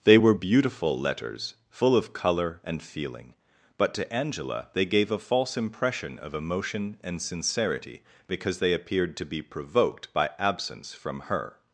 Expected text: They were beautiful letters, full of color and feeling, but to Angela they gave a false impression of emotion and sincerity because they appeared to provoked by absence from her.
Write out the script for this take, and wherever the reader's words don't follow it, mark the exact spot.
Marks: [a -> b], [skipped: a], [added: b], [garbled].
They were beautiful letters, full of color and feeling, but to Angela they gave a false impression of emotion and sincerity because they appeared to [added: be] provoked by absence from her.